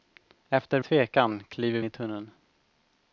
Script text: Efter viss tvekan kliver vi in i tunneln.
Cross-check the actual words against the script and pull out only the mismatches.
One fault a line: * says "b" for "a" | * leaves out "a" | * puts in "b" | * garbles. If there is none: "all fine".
* leaves out "viss"
* leaves out "vi in"